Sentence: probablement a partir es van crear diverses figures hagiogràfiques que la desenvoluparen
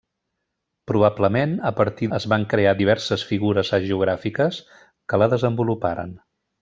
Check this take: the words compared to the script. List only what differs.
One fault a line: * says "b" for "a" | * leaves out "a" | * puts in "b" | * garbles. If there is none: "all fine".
all fine